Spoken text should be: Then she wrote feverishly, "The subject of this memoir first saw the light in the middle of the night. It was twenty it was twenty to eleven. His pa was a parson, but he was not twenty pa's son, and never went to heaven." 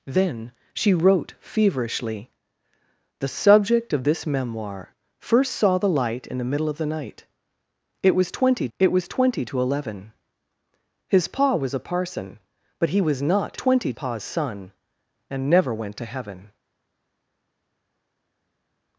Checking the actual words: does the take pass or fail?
pass